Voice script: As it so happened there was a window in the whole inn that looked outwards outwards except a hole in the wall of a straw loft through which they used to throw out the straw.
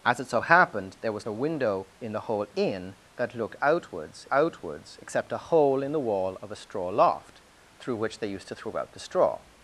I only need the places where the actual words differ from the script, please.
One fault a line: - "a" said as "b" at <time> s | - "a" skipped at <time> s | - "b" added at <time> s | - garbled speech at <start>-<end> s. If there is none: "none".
none